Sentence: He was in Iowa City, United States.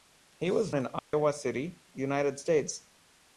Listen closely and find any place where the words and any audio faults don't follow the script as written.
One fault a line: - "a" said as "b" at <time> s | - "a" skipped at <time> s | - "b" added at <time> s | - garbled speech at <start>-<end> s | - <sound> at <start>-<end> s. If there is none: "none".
- dropout at 1.0-1.1 s